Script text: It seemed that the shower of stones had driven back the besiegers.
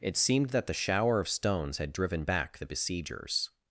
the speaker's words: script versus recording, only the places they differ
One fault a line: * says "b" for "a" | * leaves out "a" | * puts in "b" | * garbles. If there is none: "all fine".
all fine